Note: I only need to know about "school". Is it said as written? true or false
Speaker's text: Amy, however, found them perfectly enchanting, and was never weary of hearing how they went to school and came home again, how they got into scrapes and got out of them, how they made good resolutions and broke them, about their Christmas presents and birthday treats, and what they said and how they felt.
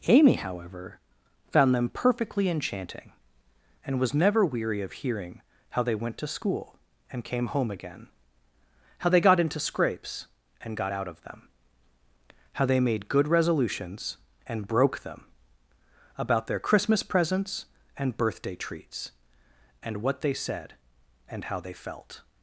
true